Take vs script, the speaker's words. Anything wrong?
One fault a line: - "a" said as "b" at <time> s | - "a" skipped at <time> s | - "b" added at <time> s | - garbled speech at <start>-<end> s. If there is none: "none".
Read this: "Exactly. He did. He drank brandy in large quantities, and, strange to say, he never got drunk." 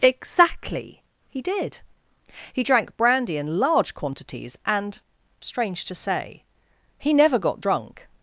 none